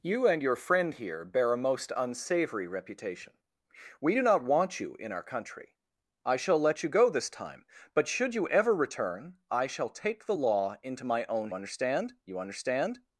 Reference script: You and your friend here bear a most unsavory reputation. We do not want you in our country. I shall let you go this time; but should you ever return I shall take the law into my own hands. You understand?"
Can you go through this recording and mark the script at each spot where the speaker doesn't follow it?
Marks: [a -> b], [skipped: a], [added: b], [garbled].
You and your friend here bear a most unsavory reputation. We do not want you in our country. I shall let you go this time; but should you ever return I shall take the law into my own [hands. -> understand] You understand?"